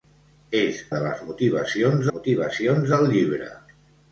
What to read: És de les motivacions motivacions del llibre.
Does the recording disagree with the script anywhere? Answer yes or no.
no